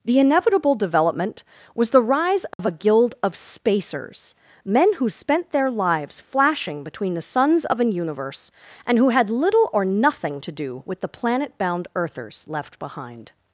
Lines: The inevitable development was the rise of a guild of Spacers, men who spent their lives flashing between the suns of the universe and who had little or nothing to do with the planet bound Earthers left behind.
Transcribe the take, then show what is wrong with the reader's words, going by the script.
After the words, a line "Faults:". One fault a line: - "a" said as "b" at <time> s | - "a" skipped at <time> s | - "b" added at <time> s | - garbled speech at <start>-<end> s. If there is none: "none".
The inevitable development was the rise of a guild of Spacers, men who spent their lives flashing between the suns of an universe and who had little or nothing to do with the planet bound Earthers left behind.
Faults:
- "the" said as "an" at 7.8 s